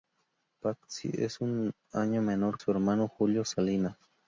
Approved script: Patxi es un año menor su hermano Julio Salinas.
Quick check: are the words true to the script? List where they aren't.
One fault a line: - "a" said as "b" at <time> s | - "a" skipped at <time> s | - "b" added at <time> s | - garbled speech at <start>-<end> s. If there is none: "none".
none